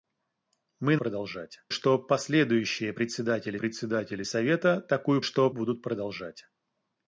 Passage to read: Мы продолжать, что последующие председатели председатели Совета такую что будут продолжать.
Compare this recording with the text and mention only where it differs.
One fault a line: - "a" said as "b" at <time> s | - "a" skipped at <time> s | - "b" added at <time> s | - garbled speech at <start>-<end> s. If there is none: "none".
none